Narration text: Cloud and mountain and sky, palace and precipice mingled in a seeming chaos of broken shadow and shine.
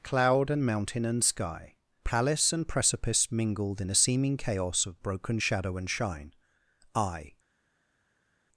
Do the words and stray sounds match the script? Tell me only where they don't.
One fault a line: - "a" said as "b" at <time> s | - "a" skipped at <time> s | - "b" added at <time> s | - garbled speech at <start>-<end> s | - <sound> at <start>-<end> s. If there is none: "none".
- "I" added at 7.0 s